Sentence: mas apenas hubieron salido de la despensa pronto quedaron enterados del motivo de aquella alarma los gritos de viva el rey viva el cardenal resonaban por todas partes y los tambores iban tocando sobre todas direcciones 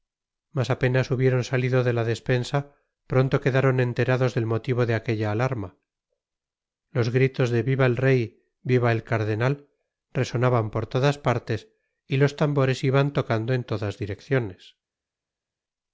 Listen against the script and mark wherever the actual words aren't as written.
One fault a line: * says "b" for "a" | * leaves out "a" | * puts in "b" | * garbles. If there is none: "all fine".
* says "en" for "sobre"